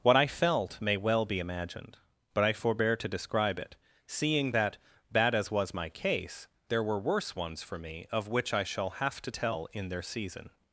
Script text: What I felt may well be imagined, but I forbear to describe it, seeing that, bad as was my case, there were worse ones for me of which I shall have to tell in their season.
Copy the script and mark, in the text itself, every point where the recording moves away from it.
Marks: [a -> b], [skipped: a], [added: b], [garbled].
What I felt may well be imagined, but I forbear to describe it, seeing that, bad as was my case, there were worse ones for me of which I shall have to tell in their season.